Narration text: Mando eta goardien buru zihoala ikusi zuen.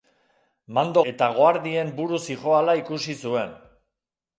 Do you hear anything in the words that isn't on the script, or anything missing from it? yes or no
no